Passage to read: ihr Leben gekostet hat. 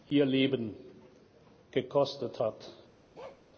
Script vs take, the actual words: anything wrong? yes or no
no